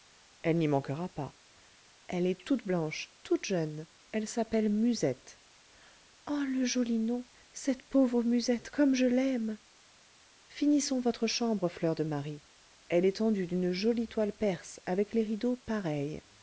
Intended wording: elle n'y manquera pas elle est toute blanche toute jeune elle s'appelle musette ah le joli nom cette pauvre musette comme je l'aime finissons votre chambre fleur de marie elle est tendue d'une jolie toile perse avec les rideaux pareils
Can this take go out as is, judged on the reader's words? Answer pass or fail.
pass